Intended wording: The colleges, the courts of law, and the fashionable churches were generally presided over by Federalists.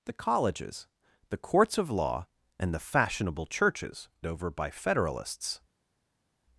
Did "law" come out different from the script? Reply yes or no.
no